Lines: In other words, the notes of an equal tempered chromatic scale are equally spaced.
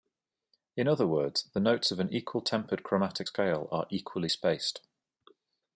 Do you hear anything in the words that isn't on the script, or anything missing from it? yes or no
no